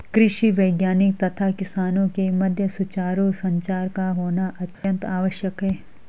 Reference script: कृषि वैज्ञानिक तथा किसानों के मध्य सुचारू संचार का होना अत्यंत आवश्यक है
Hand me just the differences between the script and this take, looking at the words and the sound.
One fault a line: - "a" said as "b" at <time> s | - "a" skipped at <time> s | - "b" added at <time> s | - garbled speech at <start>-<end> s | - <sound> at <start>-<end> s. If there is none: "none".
- dropout at 4.7-4.8 s